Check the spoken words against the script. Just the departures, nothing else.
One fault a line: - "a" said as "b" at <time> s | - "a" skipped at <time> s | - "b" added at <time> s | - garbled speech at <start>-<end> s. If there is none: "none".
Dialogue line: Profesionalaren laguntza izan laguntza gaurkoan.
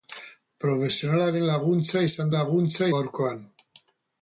none